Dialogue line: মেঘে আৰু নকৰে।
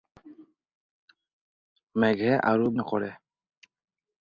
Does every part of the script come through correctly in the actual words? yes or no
yes